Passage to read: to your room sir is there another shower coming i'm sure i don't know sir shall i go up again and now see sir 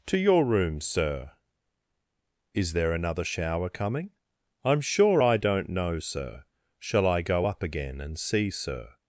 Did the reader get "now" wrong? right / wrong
wrong